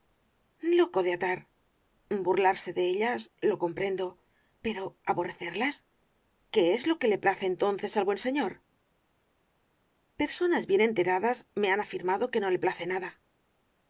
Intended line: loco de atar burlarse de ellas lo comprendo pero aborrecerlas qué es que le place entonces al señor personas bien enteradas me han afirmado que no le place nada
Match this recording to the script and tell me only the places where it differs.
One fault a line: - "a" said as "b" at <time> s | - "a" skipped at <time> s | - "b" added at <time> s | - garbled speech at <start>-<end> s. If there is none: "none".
- "lo" added at 6.9 s
- "buen" added at 8.0 s